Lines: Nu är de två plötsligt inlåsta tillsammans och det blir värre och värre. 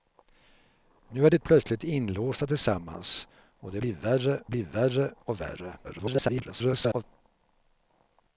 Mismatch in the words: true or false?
true